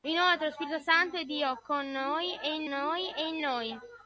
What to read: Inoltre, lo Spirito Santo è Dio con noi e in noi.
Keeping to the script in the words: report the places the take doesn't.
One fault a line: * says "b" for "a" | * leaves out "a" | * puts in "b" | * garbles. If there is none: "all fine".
* puts in "e in noi"